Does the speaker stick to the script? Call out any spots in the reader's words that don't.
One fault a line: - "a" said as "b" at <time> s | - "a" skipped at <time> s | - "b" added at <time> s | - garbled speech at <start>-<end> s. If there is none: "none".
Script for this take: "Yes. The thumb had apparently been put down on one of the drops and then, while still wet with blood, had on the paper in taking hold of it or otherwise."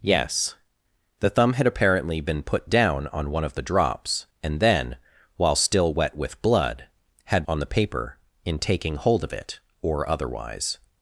none